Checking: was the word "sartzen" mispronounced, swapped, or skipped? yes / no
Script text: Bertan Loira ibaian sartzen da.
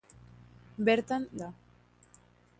yes